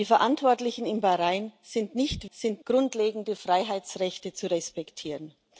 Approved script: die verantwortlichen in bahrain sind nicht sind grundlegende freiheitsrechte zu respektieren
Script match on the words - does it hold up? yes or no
yes